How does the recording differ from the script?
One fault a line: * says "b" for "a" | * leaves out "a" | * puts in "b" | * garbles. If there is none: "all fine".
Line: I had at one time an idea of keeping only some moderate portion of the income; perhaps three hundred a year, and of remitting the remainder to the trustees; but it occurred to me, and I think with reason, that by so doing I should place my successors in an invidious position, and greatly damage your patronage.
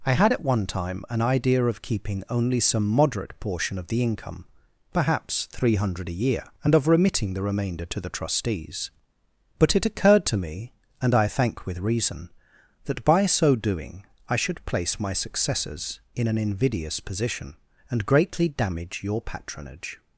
* says "thank" for "think"